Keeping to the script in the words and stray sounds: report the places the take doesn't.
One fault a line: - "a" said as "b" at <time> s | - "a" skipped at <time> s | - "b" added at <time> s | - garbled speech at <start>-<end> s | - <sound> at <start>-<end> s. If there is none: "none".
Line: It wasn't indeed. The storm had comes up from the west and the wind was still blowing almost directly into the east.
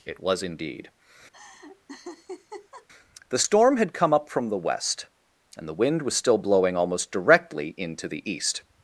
- "wasn't" said as "was" at 0.2 s
- laugh at 1.3-2.9 s
- "comes" said as "come" at 3.9 s